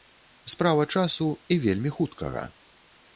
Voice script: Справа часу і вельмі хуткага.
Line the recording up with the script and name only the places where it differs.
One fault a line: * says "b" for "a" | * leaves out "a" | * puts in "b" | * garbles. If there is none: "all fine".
all fine